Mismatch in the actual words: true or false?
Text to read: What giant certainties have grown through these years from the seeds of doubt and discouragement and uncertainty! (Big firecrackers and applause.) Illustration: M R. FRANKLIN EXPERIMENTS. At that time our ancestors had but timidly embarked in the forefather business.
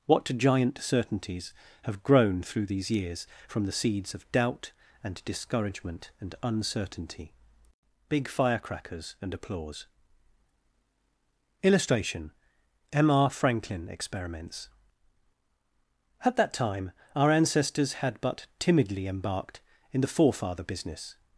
false